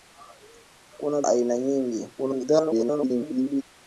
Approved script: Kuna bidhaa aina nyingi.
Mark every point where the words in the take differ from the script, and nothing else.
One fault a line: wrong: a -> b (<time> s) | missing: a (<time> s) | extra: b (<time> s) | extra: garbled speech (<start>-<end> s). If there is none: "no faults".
missing: bidhaa (1.2 s)
extra: garbled speech (2.2-3.6 s)